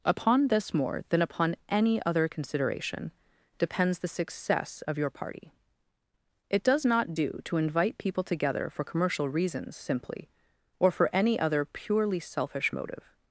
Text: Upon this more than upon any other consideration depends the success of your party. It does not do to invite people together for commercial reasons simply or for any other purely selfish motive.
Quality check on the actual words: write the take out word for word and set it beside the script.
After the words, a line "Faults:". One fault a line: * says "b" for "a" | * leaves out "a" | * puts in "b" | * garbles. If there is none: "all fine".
Upon this more than upon any other consideration depends the success of your party. It does not do to invite people together for commercial reasons simply or for any other purely selfish motive.
Faults:
all fine